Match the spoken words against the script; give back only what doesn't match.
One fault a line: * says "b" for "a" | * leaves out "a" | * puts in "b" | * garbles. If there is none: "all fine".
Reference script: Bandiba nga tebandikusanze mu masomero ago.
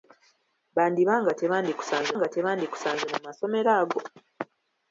* puts in "nga tebandikusanze"